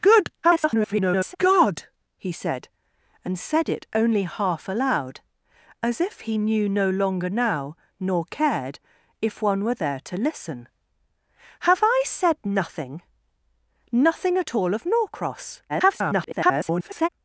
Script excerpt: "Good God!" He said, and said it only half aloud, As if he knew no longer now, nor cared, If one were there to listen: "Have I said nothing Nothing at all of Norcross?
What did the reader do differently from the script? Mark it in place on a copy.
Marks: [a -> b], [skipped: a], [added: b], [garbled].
"Good [garbled] God!" He said, and said it only half aloud, As if he knew no longer now, nor cared, If one were there to listen: "Have I said nothing Nothing at all of Norcross? [garbled]